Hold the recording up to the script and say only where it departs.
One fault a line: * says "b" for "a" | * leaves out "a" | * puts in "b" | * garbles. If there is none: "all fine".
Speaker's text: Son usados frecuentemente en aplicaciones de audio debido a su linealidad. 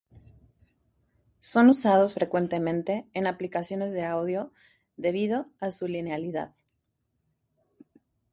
all fine